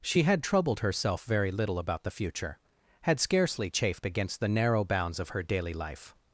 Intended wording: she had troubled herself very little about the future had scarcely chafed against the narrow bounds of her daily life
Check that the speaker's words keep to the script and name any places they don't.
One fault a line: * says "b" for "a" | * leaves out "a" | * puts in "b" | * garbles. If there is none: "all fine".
all fine